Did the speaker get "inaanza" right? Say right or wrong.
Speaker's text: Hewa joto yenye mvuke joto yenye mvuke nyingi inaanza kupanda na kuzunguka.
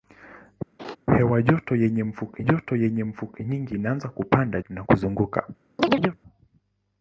right